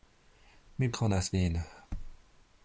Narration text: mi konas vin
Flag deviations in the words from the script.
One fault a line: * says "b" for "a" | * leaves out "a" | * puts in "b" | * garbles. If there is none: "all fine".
all fine